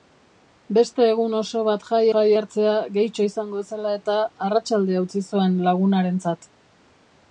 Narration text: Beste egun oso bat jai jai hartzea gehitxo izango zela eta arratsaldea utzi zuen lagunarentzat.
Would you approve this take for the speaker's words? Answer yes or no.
yes